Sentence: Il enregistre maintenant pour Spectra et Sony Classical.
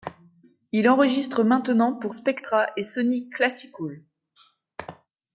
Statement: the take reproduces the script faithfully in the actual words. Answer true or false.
true